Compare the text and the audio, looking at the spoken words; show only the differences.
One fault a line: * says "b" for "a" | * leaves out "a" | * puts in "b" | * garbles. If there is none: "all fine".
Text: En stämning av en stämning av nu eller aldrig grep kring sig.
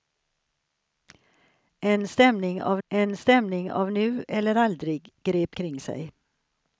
all fine